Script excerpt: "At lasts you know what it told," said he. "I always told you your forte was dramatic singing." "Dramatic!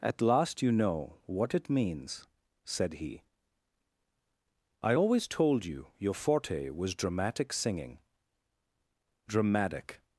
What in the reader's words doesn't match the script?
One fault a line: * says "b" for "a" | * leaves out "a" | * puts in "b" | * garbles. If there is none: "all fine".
* says "last" for "lasts"
* says "means" for "told"